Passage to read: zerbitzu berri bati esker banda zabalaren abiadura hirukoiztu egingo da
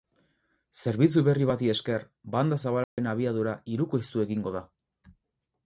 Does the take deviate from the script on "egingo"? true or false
false